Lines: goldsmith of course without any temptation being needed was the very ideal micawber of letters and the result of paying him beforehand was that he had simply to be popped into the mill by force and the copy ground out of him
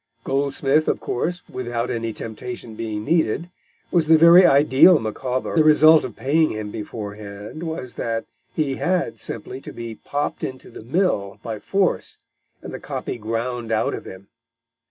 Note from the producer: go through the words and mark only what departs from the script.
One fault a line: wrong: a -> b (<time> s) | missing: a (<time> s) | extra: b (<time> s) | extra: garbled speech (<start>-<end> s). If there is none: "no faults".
missing: of letters and (5.6 s)